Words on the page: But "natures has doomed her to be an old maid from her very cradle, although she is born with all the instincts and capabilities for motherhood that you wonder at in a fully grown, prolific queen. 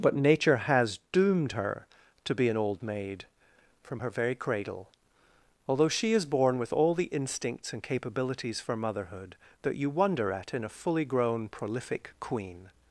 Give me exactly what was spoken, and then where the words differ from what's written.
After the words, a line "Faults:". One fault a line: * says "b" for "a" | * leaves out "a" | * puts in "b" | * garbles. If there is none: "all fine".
But "nature has doomed her to be an old maid from her very cradle, although she is born with all the instincts and capabilities for motherhood that you wonder at in a fully grown, prolific queen.
Faults:
* says "nature" for "natures"